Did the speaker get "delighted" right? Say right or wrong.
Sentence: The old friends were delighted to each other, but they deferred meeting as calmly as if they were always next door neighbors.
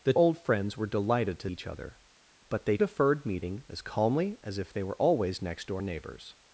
right